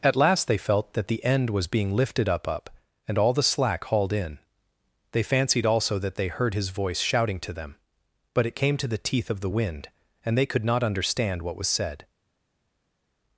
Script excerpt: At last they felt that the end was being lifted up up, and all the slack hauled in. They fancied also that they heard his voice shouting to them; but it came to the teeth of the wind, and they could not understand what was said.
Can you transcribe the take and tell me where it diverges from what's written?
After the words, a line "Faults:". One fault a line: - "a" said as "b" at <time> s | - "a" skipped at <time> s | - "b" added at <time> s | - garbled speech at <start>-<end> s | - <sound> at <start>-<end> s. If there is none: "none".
At last they felt that the end was being lifted up up, and all the slack hauled in. They fancied also that they heard his voice shouting to them; but it came to the teeth of the wind, and they could not understand what was said.
Faults:
none